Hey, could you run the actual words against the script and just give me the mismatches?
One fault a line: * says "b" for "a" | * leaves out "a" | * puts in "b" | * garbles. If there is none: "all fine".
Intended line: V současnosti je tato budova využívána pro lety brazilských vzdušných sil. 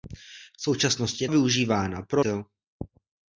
* leaves out "tato budova"
* leaves out "lety brazilských vzdušných"